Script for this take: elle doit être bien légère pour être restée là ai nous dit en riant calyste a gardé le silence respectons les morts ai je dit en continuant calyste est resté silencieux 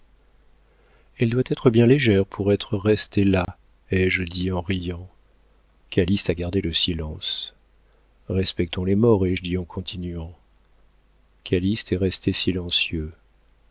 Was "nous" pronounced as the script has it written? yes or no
no